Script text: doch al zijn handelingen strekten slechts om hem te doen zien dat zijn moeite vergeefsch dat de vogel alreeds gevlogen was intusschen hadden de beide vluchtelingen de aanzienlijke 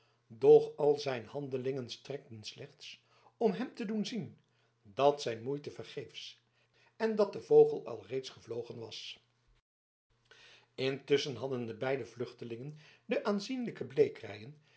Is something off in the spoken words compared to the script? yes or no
yes